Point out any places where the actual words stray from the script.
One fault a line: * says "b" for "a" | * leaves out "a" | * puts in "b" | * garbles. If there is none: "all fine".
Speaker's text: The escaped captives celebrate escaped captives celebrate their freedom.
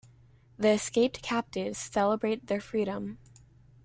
* leaves out "escaped captives celebrate"